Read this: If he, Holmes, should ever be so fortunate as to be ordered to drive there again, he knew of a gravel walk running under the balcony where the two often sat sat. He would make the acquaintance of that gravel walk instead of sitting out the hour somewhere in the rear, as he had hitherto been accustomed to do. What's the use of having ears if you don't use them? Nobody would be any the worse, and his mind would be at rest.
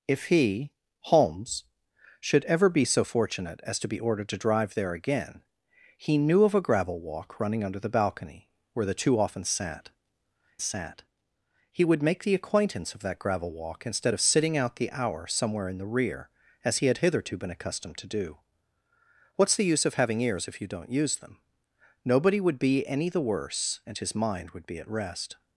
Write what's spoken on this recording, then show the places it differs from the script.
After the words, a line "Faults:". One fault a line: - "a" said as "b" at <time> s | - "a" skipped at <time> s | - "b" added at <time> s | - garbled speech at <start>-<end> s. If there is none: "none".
If he, Holmes, should ever be so fortunate as to be ordered to drive there again, he knew of a gravel walk running under the balcony where the two often sat sat. He would make the acquaintance of that gravel walk instead of sitting out the hour somewhere in the rear, as he had hitherto been accustomed to do. What's the use of having ears if you don't use them? Nobody would be any the worse, and his mind would be at rest.
Faults:
none